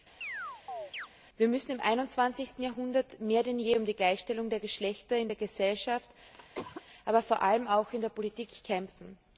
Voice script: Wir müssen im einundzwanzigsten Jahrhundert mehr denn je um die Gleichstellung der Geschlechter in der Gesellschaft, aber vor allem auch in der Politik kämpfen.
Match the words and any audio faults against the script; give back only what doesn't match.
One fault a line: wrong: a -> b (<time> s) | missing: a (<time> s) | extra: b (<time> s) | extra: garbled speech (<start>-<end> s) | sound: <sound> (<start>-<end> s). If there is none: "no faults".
sound: chirp (0.2-1.1 s)
sound: cough (6.3-6.8 s)